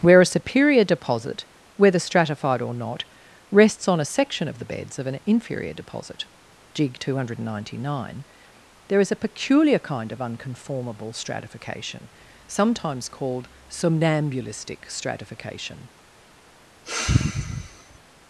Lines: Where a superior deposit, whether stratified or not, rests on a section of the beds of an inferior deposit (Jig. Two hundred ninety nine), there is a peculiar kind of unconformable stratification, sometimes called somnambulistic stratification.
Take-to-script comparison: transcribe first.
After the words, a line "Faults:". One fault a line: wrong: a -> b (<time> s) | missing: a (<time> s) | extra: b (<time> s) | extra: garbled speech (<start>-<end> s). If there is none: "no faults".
Where a superior deposit, whether stratified or not, rests on a section of the beds of an inferior deposit (Jig. Two hundred ninety nine), there is a peculiar kind of unconformable stratification, sometimes called somnambulistic stratification.
Faults:
no faults